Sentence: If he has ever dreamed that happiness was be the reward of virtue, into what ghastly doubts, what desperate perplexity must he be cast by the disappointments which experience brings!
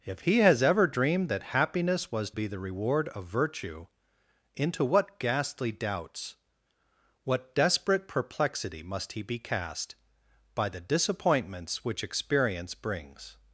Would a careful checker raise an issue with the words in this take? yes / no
no